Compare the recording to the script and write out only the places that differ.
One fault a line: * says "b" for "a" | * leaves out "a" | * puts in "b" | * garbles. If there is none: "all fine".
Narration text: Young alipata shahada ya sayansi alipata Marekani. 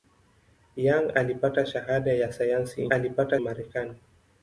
all fine